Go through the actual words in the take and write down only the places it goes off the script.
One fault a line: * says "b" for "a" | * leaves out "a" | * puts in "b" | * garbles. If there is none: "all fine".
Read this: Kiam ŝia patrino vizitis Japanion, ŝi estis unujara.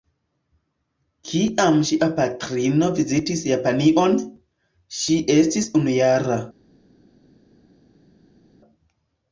all fine